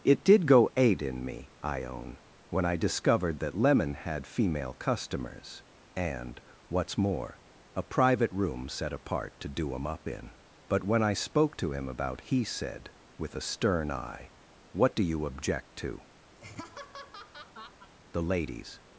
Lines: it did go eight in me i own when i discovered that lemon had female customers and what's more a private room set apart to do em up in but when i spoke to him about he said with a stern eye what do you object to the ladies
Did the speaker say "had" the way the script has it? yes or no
yes